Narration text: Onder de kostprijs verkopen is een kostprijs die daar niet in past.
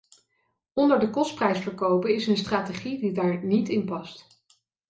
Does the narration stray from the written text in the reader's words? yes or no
yes